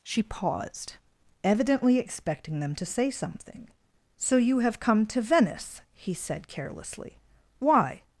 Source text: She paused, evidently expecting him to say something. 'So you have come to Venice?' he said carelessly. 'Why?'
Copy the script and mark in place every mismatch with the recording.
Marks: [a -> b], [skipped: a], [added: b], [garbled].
She paused, evidently expecting [him -> them] to say something. 'So you have come to Venice?' he said carelessly. 'Why?'